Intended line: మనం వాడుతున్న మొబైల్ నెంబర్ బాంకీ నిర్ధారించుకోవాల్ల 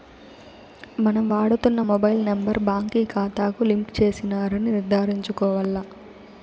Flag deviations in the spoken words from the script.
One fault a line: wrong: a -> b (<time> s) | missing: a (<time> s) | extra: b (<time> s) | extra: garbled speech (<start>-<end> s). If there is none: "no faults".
extra: కాతాకు లింక్ చేసినారని (3.1 s)